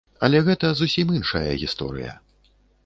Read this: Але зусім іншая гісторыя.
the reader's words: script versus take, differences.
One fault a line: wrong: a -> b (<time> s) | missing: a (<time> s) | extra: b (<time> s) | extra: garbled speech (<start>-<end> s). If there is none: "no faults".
extra: гэта (0.5 s)